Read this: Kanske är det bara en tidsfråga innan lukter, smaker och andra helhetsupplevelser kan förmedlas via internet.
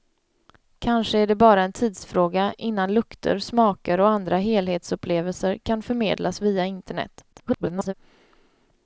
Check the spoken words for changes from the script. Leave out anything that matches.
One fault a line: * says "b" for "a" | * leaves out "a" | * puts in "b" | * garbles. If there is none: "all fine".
* garbles